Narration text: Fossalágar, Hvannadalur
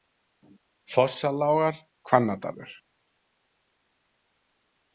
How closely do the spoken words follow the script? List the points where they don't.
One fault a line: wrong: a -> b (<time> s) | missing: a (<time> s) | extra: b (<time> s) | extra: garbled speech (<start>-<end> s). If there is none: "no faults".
no faults